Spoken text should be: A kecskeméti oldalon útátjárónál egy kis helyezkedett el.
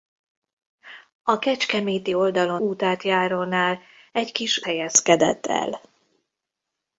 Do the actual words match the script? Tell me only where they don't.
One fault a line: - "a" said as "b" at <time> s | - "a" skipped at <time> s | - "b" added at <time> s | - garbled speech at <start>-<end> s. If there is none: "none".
none